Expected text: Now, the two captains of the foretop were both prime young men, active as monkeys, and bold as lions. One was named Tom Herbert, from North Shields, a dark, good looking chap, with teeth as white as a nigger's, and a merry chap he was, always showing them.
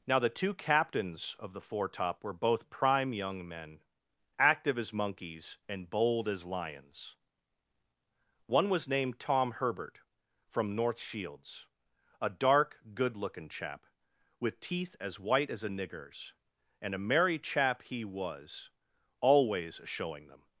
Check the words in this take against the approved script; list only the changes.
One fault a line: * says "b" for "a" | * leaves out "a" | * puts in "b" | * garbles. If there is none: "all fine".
all fine